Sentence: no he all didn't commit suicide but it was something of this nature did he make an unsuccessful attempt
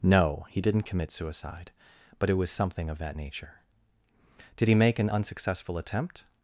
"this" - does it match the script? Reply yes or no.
no